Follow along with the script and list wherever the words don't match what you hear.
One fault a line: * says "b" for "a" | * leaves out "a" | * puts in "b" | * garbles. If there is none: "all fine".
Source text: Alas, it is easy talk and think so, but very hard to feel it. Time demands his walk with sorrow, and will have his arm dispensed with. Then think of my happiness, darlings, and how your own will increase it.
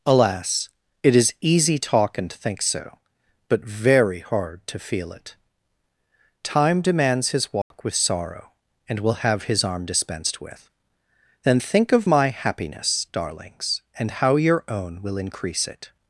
all fine